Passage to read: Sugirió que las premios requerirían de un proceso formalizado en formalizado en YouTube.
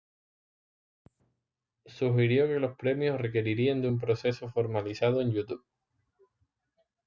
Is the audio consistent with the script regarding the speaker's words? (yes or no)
no